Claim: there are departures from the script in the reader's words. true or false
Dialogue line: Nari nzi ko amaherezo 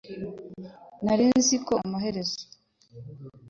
false